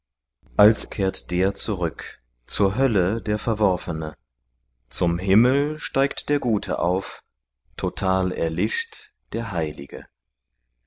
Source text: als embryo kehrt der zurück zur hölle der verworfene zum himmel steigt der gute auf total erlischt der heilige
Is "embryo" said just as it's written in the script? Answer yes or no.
no